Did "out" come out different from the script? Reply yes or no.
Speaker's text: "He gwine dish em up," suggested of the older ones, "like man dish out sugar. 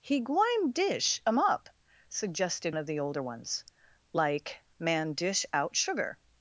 no